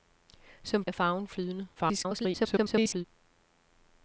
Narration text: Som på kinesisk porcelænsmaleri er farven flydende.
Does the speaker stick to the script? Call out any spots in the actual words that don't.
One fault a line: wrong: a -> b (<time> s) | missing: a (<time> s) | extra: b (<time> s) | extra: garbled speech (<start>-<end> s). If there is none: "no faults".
missing: på kinesisk porcelænsmaleri (0.8 s)
extra: garbled speech (1.7-3.1 s)